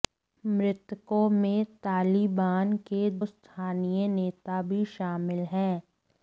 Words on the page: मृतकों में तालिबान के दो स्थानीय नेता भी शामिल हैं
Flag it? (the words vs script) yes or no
yes